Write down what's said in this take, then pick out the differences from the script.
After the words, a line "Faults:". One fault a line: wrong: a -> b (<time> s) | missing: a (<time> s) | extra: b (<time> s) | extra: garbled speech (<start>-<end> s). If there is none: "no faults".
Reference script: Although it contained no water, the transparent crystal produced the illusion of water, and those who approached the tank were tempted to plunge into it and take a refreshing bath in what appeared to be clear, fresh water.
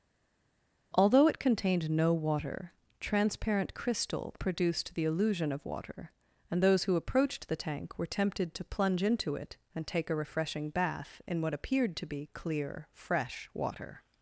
Although it contained no water, transparent crystal produced the illusion of water, and those who approached the tank were tempted to plunge into it and take a refreshing bath in what appeared to be clear, fresh water.
Faults:
missing: the (2.7 s)